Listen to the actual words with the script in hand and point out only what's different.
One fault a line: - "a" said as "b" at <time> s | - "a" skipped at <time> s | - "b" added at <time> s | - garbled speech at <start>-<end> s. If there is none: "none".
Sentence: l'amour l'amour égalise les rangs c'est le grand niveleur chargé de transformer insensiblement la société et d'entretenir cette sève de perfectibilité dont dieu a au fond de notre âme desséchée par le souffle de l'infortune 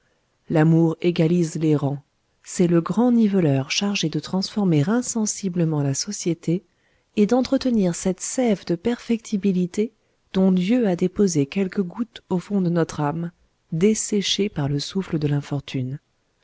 - "l'amour" skipped at 1.0 s
- "déposé quelques gouttes" added at 10.9 s